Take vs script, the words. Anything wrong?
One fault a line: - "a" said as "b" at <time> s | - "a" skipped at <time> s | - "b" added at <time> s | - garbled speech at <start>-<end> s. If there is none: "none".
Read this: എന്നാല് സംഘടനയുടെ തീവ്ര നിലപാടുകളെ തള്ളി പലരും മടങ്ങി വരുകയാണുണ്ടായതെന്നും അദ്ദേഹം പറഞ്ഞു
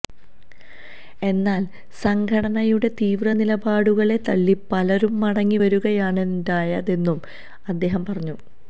none